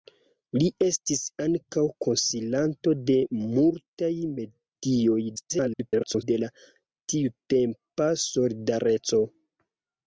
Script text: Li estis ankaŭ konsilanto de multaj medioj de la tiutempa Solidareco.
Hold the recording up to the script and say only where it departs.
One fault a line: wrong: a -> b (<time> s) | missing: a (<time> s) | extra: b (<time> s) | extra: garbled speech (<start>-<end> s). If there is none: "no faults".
extra: garbled speech (5.4-6.2 s)